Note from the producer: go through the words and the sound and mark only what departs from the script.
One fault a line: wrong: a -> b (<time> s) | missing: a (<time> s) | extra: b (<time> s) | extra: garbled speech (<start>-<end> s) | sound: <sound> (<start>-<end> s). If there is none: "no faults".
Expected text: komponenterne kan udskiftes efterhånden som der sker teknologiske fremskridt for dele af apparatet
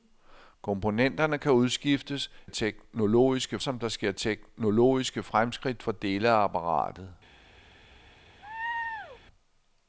wrong: efterhånden -> teknologiske (2.5 s)
sound: laugh (8.4-9.2 s)